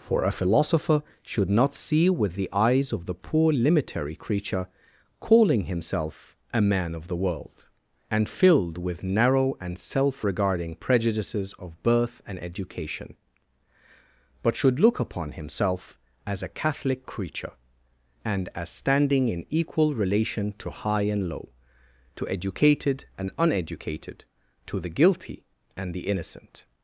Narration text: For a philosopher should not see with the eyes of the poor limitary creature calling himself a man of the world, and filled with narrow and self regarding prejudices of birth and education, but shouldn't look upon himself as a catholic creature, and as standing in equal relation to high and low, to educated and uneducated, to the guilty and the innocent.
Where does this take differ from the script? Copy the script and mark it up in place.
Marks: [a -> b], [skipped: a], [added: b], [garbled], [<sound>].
For a philosopher should not see with the eyes of the poor limitary creature calling himself a man of the world, and filled with narrow and self regarding prejudices of birth and education, but [shouldn't -> should] look upon himself as a catholic creature, and as standing in equal relation to high and low, to educated and uneducated, to the guilty and the innocent.